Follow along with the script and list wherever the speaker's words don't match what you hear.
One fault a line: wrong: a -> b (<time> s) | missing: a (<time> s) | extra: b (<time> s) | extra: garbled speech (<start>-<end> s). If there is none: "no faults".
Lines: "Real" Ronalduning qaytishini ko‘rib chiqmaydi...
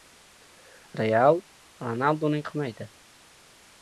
missing: qaytishini ko‘rib (2.4 s)